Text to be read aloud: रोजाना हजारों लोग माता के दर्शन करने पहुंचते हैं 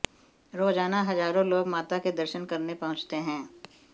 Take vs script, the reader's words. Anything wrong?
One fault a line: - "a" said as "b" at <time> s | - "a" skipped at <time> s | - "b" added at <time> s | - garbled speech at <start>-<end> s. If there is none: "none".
none